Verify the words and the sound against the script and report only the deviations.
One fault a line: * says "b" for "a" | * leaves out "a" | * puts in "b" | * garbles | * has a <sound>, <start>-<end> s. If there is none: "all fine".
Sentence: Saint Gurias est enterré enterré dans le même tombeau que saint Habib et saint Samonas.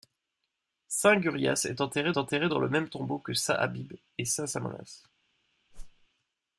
* has a whoosh, 5.7-6.1 s